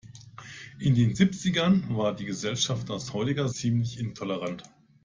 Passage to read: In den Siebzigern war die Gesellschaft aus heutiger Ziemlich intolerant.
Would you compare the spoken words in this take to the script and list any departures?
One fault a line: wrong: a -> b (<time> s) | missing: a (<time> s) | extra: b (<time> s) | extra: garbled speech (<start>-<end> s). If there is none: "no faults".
no faults